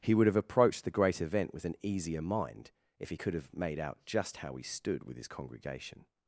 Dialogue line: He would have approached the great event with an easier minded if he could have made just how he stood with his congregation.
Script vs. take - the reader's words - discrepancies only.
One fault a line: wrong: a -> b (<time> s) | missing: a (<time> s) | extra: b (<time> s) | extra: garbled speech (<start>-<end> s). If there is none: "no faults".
wrong: minded -> mind (2.2 s)
extra: out (3.8 s)